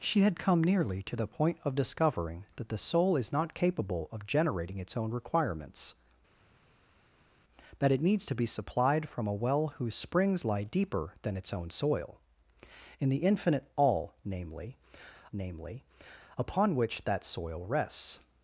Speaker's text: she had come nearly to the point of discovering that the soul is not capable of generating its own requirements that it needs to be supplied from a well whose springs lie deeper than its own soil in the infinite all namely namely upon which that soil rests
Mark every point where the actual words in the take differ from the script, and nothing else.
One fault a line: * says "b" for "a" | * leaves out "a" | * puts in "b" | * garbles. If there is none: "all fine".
all fine